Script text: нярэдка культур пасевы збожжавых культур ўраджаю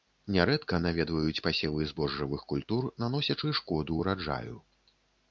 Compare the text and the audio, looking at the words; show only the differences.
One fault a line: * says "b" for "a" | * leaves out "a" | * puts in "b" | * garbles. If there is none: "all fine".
* says "наведваюць" for "культур"
* puts in "наносячы шкоду"